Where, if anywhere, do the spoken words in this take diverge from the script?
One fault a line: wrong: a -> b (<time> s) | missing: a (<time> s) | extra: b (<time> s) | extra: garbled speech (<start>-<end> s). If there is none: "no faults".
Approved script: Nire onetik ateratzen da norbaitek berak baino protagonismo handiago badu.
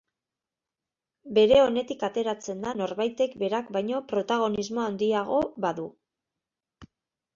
wrong: Nire -> Bere (1.4 s)